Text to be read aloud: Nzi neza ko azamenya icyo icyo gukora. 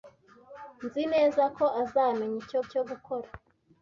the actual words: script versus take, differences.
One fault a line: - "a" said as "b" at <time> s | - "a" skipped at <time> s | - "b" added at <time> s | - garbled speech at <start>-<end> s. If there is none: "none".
none